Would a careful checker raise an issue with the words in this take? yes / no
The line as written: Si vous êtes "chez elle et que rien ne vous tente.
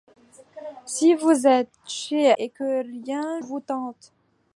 yes